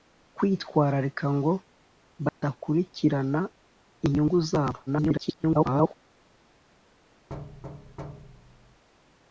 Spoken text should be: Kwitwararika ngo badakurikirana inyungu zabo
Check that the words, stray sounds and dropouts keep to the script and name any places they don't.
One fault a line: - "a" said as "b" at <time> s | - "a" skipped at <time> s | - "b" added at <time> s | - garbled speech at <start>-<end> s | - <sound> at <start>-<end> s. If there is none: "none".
- dropout at 2.3-2.4 s
- garbled speech at 4.9-5.9 s
- thud at 7.3-8.8 s